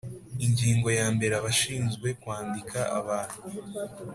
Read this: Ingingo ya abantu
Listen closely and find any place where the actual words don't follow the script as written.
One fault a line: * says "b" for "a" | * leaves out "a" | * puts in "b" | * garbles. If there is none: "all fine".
* puts in "mbere Abashinzwe kwandika"